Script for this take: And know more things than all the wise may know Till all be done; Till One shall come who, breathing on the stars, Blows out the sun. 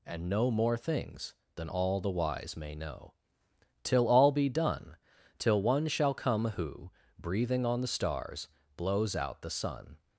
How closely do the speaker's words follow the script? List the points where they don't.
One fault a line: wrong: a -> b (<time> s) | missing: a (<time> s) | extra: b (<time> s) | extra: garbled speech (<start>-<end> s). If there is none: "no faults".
no faults